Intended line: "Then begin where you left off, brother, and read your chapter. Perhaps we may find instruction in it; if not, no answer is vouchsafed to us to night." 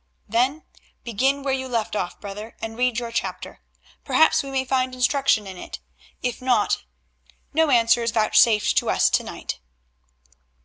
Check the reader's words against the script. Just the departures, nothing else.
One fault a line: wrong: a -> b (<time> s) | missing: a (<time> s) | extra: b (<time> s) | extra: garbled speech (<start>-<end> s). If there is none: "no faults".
no faults